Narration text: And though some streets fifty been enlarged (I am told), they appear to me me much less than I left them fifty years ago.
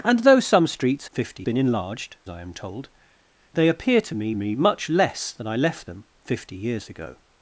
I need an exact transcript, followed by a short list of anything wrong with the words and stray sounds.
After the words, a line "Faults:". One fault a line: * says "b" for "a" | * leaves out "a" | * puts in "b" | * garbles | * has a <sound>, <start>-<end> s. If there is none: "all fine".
And though some streets fifty been enlarged (I am told), they appear to me me much less than I left them fifty years ago.
Faults:
all fine